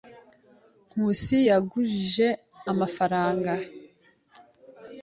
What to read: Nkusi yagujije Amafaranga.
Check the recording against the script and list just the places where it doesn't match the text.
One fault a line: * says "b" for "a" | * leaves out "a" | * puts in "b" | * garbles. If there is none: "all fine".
all fine